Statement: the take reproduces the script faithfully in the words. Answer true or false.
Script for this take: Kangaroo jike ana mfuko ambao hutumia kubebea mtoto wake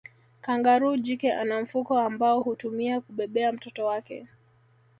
true